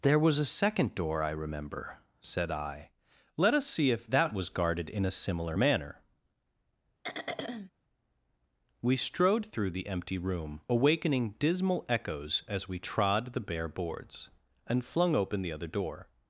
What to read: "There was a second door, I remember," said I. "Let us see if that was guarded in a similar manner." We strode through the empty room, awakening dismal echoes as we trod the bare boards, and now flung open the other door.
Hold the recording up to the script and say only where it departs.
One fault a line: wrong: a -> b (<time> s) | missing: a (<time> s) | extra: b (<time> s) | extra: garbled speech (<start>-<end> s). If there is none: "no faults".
missing: now (14.8 s)